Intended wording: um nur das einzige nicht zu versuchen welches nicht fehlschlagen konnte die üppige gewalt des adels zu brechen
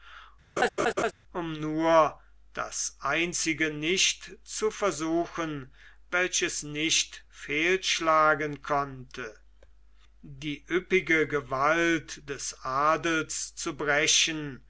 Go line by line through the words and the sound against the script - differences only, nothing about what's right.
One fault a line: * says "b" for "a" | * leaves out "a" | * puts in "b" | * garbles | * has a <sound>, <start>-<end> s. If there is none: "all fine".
* has a laugh, 0.6-1.1 s